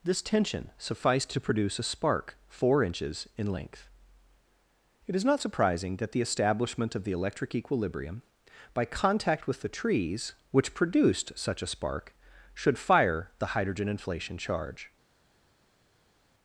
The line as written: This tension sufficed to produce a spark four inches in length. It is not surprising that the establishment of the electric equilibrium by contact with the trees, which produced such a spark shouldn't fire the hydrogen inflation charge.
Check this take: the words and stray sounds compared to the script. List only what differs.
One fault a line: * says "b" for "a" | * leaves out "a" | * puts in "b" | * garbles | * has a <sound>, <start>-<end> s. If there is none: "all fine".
* says "should" for "shouldn't"